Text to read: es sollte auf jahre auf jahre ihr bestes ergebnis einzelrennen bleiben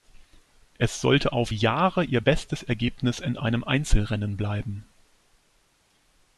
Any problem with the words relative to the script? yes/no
yes